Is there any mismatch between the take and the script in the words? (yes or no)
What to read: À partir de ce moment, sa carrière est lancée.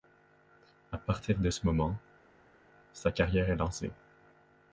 no